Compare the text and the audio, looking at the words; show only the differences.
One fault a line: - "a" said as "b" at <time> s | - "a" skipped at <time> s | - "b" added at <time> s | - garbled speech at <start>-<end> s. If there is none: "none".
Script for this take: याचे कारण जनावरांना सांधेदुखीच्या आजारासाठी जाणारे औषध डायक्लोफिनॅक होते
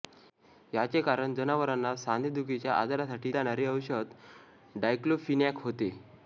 none